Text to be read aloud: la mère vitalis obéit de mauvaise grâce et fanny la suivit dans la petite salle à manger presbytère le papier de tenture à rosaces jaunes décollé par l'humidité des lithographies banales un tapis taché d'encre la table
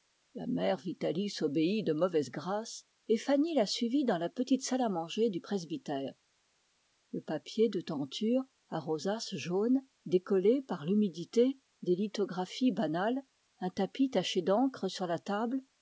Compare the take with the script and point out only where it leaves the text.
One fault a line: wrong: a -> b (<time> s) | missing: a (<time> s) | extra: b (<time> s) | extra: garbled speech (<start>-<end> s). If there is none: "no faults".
extra: du (5.3 s)
extra: sur (14.9 s)